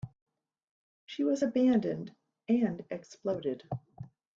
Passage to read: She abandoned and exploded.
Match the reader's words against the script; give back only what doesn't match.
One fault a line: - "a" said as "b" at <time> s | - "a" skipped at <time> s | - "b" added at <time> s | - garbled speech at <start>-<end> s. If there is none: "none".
- "was" added at 1.2 s